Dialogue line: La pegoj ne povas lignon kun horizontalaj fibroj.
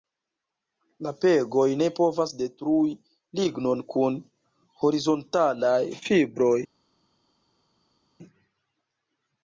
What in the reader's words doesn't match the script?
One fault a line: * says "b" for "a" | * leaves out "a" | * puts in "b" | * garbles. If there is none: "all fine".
* puts in "detrui"